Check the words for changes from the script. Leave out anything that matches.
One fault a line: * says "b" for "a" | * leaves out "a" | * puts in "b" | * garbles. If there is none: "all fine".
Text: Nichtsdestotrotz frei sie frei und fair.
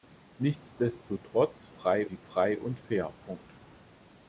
all fine